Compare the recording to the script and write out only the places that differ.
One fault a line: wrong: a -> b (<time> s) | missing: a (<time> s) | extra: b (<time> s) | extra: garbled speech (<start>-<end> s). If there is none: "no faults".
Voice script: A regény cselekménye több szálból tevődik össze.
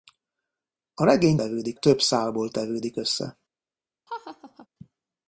wrong: cselekménye -> tevődik (1.3 s)